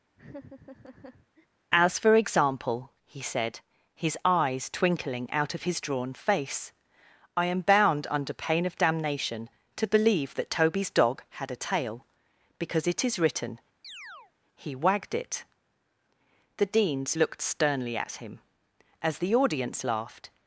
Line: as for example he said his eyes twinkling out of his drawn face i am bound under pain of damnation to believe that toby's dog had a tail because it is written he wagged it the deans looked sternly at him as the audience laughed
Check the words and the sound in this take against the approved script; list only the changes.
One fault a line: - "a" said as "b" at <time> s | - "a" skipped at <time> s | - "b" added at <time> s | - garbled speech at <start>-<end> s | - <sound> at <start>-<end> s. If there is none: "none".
- laugh at 0.2-1.5 s
- chirp at 13.8-14.3 s